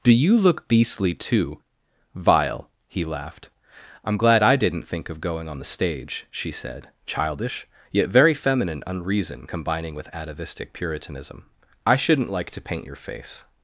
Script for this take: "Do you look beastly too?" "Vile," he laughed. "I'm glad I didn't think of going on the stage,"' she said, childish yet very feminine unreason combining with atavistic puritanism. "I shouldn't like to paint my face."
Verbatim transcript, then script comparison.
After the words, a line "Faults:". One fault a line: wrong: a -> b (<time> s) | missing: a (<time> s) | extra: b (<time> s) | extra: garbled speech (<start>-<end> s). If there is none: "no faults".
"Do you look beastly too?" "Vile," he laughed. "I'm glad I didn't think of going on the stage,"' she said, childish yet very feminine unreason combining with atavistic puritanism. "I shouldn't like to paint your face."
Faults:
wrong: my -> your (12.9 s)